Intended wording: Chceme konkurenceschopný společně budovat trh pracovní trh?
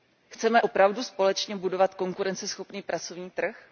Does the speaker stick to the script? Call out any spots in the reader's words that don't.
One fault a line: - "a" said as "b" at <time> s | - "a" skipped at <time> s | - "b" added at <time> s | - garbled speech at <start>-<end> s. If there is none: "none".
- "konkurenceschopný" said as "opravdu" at 0.6 s
- "trh" said as "konkurenceschopný" at 1.9 s